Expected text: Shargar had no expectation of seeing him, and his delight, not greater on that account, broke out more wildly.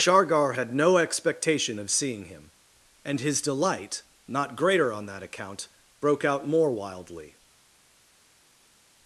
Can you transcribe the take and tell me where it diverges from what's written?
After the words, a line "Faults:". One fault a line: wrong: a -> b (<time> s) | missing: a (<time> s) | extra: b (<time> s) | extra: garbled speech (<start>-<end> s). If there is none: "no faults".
Shargar had no expectation of seeing him, and his delight, not greater on that account, broke out more wildly.
Faults:
no faults